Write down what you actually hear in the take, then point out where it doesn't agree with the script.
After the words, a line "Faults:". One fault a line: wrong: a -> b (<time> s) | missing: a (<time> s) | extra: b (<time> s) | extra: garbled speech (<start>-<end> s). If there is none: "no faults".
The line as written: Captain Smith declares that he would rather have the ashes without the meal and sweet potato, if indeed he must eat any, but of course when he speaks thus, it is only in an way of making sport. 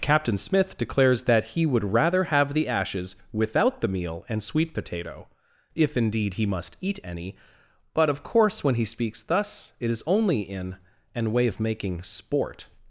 Captain Smith declares that he would rather have the ashes without the meal and sweet potato, if indeed he must eat any, but of course when he speaks thus, it is only in an way of making sport.
Faults:
no faults